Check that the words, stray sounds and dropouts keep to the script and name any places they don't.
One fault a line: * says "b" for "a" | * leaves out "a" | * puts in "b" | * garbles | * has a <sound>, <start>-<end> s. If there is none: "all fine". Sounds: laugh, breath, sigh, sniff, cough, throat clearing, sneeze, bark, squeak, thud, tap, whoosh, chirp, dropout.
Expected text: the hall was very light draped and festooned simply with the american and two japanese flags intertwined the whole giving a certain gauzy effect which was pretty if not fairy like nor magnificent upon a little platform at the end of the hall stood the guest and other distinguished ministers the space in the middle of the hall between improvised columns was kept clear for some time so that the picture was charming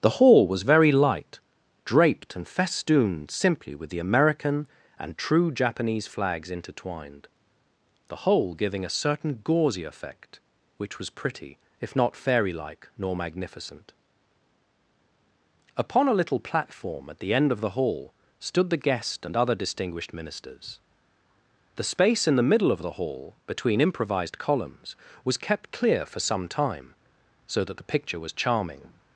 * says "true" for "two"